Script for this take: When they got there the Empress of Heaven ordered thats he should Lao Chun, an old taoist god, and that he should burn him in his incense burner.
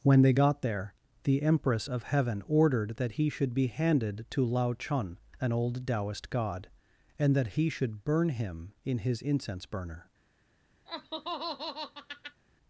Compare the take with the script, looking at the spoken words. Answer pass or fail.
fail